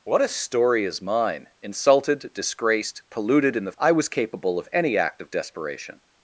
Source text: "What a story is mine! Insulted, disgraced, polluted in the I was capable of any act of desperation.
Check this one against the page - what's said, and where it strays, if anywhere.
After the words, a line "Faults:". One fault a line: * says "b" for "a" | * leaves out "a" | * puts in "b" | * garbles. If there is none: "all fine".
"What a story is mine! Insulted, disgraced, polluted in the I was capable of any act of desperation.
Faults:
all fine